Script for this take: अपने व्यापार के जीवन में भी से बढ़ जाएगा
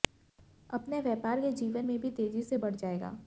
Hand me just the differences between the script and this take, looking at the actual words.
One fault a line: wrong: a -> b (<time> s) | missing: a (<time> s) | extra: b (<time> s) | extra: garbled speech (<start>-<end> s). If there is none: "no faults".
extra: तेजी (2.1 s)